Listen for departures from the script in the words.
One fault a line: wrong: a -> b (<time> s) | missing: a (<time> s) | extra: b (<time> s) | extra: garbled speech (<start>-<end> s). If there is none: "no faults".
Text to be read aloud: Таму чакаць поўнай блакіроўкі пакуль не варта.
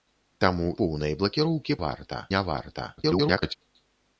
missing: чакаць (0.7 s)
wrong: пакуль -> варта (1.9 s)
extra: garbled speech (3.0-3.6 s)